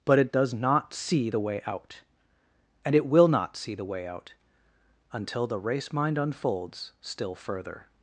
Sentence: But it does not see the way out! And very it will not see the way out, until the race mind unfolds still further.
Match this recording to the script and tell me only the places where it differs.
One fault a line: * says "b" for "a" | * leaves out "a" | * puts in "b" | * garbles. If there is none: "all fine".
* leaves out "very"